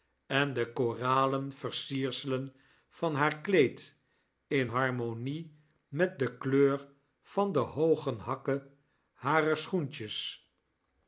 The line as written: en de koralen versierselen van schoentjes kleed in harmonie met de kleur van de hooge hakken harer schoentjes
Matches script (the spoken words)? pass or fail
fail